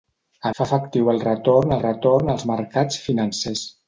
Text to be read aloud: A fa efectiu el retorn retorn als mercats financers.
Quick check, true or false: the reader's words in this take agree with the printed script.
true